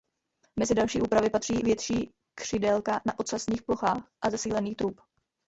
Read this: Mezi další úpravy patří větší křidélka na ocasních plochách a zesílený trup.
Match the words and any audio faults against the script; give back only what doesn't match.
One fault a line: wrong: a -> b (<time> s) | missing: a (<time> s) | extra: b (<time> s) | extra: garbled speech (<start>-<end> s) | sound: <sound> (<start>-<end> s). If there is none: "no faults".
no faults